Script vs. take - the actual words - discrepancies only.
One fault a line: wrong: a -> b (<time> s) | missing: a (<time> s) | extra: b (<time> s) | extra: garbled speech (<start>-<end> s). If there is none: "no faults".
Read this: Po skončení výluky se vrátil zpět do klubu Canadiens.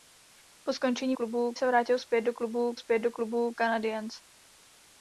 wrong: výluky -> klubu (1.1 s)
extra: zpět do klubu (2.7 s)